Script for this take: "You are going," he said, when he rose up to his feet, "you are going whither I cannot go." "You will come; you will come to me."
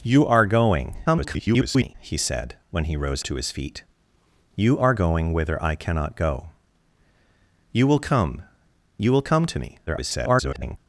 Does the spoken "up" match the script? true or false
false